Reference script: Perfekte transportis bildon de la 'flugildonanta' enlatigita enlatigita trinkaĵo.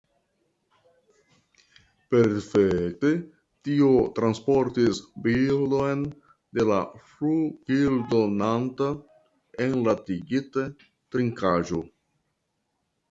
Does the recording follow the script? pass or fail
fail